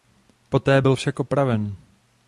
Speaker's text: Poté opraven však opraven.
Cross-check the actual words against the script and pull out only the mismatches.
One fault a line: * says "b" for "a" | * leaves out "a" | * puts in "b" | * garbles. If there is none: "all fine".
* says "byl" for "opraven"